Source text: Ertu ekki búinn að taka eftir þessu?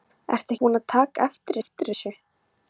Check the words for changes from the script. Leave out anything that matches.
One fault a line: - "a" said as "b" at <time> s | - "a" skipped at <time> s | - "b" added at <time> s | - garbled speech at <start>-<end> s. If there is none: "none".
- "ekki" skipped at 0.6 s
- "eftir" added at 1.6 s